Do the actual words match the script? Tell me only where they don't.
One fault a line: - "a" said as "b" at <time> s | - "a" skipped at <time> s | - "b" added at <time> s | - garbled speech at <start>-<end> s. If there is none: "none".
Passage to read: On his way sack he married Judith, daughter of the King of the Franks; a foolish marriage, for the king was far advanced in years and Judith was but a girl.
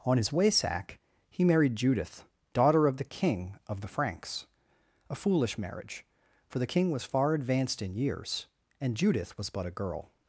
none